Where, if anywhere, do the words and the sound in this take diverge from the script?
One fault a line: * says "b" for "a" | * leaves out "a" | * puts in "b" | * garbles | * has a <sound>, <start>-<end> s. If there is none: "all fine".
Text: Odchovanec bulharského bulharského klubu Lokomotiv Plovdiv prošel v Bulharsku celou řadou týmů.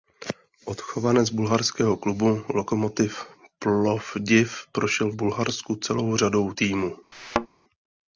* leaves out "bulharského"
* has a thud, 7.1-7.5 s